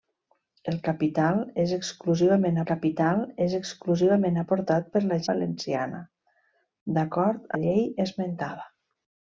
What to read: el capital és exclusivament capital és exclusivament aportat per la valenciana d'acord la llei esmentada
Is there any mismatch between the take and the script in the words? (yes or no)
no